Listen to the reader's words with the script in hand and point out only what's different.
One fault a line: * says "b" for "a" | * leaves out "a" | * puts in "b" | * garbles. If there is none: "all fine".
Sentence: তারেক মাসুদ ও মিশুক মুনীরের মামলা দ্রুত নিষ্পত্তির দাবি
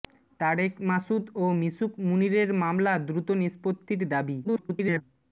* garbles